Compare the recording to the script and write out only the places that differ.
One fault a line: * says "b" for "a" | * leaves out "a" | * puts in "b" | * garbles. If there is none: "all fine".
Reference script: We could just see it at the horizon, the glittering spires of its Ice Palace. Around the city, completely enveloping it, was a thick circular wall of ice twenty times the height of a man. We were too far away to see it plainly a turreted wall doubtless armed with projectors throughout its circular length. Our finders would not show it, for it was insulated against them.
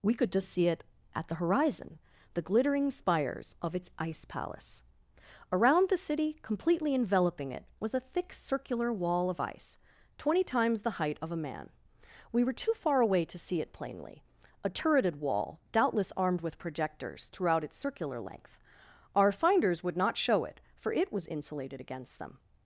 all fine